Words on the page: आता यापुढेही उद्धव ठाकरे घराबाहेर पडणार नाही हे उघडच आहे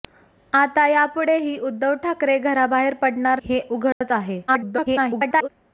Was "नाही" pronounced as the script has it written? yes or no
no